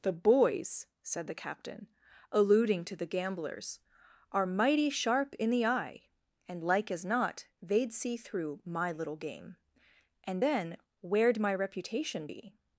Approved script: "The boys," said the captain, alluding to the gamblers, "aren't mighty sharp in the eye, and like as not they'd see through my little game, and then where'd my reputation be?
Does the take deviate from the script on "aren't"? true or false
true